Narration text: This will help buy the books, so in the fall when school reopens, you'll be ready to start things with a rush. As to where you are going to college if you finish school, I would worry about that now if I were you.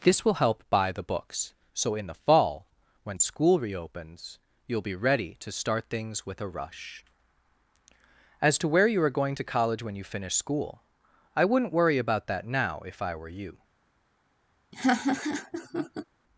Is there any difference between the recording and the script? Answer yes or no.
yes